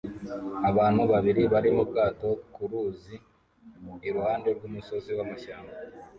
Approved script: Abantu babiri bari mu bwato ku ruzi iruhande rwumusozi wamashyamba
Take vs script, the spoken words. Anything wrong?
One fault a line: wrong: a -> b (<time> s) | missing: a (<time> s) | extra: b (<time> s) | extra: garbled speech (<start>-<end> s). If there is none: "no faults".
no faults